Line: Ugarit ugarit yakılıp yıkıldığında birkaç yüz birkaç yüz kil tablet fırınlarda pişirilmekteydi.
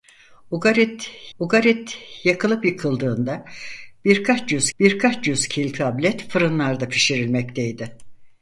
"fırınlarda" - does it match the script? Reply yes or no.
yes